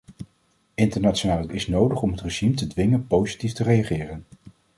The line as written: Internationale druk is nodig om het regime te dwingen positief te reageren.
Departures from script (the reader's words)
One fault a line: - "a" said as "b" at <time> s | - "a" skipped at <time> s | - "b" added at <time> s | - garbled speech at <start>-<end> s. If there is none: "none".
- "druk" skipped at 1.5 s